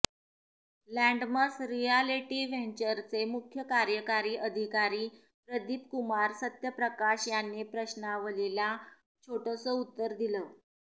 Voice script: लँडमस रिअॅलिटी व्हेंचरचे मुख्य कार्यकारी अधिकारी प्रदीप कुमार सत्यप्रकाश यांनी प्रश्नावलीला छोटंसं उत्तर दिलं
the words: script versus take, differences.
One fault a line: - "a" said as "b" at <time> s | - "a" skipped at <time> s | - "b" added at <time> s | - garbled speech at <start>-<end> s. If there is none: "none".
none